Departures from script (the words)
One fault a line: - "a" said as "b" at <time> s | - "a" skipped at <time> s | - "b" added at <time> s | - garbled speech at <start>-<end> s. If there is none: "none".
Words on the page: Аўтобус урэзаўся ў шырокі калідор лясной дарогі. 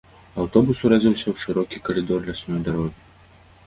none